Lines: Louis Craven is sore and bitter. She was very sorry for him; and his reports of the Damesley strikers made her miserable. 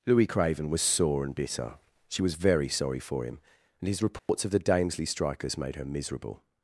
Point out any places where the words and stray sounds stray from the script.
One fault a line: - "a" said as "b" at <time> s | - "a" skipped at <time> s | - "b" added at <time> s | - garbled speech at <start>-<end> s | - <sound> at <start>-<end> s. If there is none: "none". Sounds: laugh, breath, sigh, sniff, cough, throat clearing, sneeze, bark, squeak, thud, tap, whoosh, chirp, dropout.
- "is" said as "was" at 0.7 s
- dropout at 4.2-4.3 s